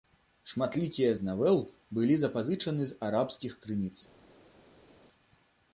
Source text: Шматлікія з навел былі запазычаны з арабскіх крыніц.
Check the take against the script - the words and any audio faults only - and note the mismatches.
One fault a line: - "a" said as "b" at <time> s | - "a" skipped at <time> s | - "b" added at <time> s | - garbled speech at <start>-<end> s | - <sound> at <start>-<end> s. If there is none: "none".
none